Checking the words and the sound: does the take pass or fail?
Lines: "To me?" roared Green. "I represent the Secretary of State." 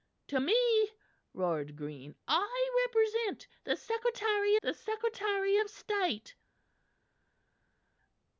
fail